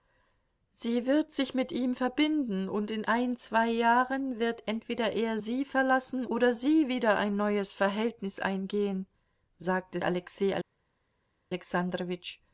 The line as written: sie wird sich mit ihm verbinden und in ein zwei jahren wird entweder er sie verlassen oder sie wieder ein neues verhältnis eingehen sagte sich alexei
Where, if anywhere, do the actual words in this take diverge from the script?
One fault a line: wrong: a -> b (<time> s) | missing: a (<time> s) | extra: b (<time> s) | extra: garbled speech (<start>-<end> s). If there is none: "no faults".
missing: sich (10.0 s)